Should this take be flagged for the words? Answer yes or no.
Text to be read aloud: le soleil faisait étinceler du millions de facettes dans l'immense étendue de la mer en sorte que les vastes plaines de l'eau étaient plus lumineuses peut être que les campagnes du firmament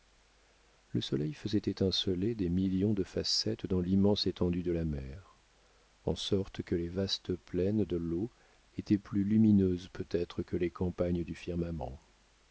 yes